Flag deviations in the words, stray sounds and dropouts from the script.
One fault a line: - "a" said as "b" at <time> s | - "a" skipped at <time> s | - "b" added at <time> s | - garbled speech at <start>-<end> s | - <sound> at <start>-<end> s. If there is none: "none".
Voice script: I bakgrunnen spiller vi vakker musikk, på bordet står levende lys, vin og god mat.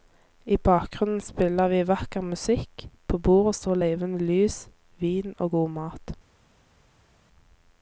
none